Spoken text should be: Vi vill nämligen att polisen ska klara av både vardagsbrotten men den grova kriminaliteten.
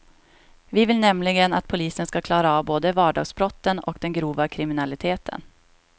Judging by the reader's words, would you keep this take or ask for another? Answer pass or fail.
fail